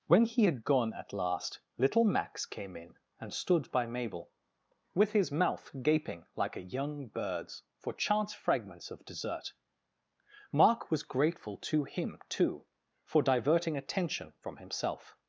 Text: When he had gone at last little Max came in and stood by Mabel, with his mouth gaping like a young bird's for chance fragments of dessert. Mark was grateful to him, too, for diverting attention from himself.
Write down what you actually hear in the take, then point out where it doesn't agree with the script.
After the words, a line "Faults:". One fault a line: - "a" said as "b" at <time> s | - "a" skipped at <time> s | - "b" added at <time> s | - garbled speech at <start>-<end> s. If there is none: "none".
When he had gone at last little Max came in and stood by Mabel, with his mouth gaping like a young bird's for chance fragments of dessert. Mark was grateful to him, too, for diverting attention from himself.
Faults:
none